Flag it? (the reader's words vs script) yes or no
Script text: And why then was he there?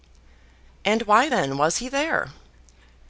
no